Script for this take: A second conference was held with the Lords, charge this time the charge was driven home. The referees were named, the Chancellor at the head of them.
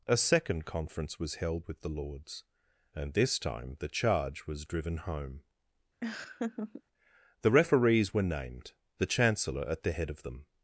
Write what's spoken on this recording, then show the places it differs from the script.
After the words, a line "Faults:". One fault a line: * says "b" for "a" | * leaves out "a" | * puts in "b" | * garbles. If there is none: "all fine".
A second conference was held with the Lords, and this time the charge was driven home. The referees were named, the Chancellor at the head of them.
Faults:
* says "and" for "charge"